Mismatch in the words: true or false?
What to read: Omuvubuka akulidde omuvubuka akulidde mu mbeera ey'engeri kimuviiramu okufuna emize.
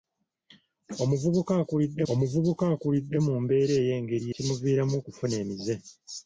false